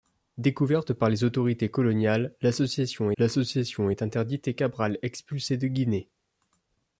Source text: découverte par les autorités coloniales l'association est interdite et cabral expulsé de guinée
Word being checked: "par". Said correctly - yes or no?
yes